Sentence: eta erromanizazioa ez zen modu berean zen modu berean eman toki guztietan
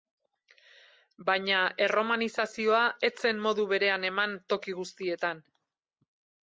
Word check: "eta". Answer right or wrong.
wrong